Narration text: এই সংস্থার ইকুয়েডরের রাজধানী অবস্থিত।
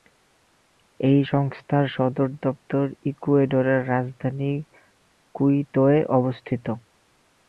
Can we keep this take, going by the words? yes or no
no